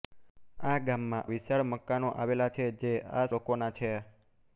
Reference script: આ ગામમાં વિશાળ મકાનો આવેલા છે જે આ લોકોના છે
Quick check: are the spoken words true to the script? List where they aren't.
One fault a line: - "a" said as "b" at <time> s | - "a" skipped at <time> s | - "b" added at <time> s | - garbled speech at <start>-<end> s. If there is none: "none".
none